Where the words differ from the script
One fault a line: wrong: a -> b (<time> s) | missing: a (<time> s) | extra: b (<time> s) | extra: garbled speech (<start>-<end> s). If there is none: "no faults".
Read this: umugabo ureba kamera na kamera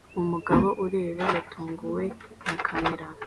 wrong: kamera -> yatunguwe (1.3 s)